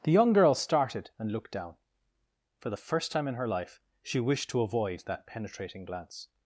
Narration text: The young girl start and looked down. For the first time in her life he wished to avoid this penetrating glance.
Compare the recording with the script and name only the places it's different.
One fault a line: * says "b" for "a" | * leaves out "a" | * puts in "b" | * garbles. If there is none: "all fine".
* says "started" for "start"
* says "she" for "he"
* says "that" for "this"